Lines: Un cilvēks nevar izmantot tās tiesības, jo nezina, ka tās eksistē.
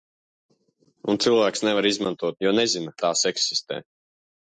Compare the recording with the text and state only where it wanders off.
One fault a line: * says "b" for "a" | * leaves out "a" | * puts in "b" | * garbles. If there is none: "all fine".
* leaves out "tās tiesības"
* leaves out "ka"